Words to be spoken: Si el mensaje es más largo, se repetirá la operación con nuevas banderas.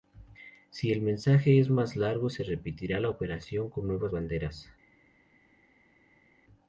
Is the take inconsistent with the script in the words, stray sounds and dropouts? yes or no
no